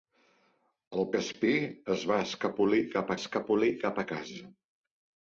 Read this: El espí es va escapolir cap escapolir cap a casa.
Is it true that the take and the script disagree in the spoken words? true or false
false